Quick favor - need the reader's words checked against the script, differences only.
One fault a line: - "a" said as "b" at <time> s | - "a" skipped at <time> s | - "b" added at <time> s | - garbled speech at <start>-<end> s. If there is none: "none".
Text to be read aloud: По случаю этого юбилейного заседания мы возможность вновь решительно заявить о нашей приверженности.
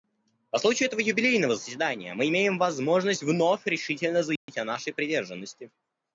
- "имеем" added at 2.3 s